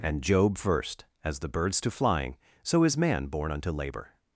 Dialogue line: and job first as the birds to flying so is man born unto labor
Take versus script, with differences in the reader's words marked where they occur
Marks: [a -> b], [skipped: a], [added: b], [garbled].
and job first as the birds to flying so is man born unto labor